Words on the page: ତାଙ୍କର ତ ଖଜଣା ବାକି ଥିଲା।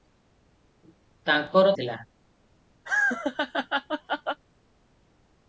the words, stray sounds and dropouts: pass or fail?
fail